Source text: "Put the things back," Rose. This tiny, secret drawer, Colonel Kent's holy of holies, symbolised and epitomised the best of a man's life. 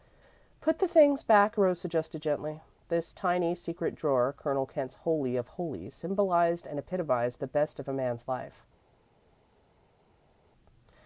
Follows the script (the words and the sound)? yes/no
no